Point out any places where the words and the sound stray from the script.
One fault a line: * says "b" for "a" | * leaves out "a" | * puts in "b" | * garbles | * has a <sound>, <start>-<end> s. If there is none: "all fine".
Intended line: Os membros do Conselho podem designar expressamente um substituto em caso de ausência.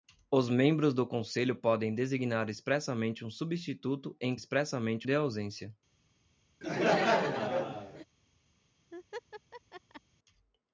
* says "expressamente" for "caso"
* has a laugh, 6.6-8.0 s
* has a laugh, 8.9-10.0 s